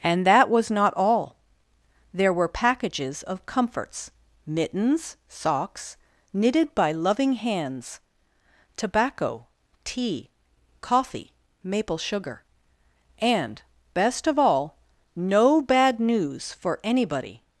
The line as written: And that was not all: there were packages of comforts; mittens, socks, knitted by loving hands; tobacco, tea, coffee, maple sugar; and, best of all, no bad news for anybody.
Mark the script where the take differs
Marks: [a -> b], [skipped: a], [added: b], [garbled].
And that was not all: there were packages of comforts; mittens, socks, knitted by loving hands; tobacco, tea, coffee, maple sugar; and, best of all, no bad news for anybody.